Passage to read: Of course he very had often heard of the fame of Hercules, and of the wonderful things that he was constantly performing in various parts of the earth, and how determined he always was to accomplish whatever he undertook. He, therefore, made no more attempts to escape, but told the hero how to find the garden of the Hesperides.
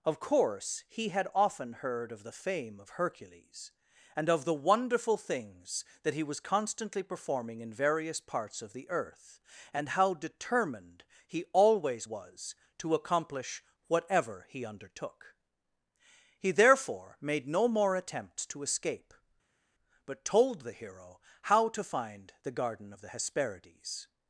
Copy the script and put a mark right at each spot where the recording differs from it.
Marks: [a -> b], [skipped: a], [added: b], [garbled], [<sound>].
Of course he [skipped: very] had often heard of the fame of Hercules, and of the wonderful things that he was constantly performing in various parts of the earth, and how determined he always was to accomplish whatever he undertook. He, therefore, made no more attempts to escape, but told the hero how to find the garden of the Hesperides.